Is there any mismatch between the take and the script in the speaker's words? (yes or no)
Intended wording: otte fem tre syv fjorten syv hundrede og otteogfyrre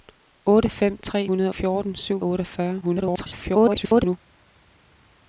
yes